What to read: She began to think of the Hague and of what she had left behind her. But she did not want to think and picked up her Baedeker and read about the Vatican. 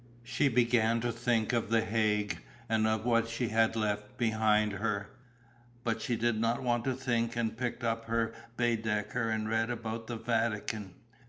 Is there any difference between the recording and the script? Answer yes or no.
no